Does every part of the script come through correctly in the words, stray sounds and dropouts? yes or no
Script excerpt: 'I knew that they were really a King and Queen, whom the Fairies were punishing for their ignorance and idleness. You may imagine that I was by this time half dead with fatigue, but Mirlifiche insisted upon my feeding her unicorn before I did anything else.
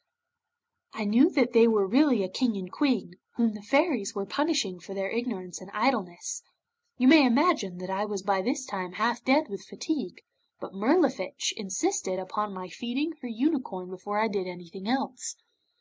yes